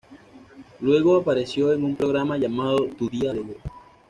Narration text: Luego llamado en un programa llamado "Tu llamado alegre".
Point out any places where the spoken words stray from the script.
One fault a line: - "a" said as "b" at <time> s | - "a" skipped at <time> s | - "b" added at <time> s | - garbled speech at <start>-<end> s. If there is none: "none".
- "llamado" said as "apareció" at 1.2 s
- "llamado" said as "día" at 3.1 s